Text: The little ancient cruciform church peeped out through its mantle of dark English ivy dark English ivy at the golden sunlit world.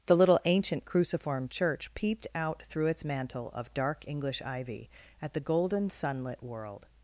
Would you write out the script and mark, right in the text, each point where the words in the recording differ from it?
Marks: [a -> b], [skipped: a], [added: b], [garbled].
The little ancient cruciform church peeped out through its mantle of dark English ivy [skipped: dark English ivy] at the golden sunlit world.